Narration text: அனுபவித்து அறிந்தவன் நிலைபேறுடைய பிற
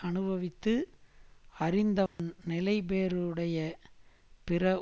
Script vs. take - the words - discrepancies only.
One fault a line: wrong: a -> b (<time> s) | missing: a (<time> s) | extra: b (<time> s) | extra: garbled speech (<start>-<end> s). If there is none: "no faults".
no faults